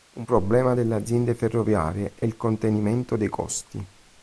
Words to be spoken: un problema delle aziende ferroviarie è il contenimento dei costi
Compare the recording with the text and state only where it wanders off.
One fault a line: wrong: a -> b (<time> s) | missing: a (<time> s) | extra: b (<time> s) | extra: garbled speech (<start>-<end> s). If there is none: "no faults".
no faults